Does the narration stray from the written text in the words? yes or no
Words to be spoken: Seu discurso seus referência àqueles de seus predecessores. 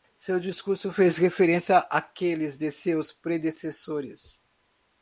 yes